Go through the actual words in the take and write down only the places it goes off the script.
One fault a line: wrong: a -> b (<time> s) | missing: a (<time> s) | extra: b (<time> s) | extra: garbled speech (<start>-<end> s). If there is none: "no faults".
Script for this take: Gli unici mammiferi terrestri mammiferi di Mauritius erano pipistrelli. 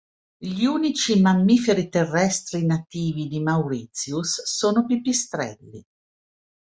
wrong: mammiferi -> nativi (2.6 s)
wrong: erano -> sono (4.5 s)